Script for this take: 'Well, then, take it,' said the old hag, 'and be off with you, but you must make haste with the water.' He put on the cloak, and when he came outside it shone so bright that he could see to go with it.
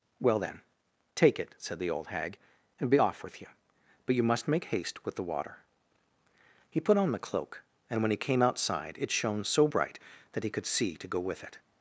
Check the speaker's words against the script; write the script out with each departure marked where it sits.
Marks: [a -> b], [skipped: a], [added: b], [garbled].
'Well, then, take it,' said the old hag, 'and be off with you, but you must make haste with the water.' He put on the cloak, and when he came outside it shone so bright that he could see to go with it.